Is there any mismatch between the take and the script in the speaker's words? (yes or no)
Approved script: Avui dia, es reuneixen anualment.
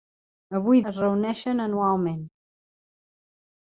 yes